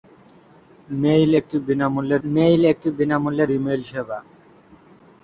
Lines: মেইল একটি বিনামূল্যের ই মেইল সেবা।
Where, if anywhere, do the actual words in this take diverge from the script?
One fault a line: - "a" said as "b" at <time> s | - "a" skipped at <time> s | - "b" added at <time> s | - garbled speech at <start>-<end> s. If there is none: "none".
- "মেইল একটি বিনামূল্যের" added at 2.3 s